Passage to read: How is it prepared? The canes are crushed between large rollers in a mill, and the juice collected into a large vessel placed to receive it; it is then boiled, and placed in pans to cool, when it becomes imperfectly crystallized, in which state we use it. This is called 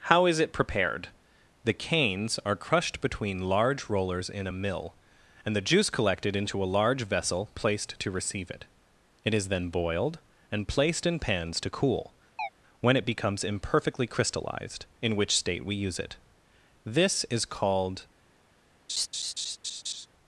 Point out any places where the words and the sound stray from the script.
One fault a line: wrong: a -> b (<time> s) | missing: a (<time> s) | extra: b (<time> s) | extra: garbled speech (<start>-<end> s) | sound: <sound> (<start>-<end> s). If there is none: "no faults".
sound: chirp (12.4-12.5 s)
sound: laugh (18.9-20.1 s)